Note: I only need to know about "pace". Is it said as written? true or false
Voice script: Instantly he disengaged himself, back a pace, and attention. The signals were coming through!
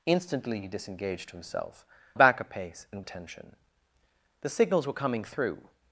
true